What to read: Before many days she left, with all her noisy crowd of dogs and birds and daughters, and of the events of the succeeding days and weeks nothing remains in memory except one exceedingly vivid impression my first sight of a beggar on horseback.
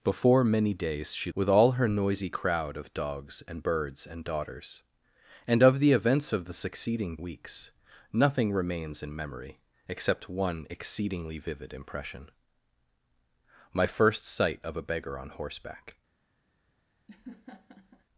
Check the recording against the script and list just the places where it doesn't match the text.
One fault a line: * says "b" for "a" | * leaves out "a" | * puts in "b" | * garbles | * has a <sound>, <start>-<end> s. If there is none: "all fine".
* leaves out "left"
* leaves out "days and"
* has a laugh, 17.1-18.0 s